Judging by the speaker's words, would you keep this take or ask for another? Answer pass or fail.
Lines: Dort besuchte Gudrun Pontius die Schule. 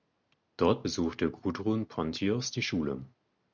pass